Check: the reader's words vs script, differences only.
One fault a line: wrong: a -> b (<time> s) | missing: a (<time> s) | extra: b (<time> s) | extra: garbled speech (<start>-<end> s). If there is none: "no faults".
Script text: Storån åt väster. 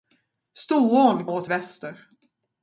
no faults